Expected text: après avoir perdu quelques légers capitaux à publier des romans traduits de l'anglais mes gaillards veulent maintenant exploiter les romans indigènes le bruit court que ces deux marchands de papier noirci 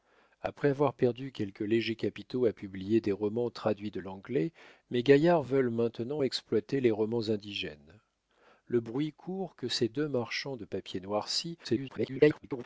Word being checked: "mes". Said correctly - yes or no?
yes